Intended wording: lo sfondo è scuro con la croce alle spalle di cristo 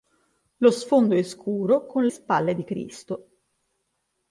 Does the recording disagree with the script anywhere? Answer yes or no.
yes